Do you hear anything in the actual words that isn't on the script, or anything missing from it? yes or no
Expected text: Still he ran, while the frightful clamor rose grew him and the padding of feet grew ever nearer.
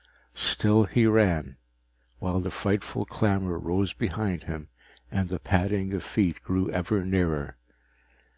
yes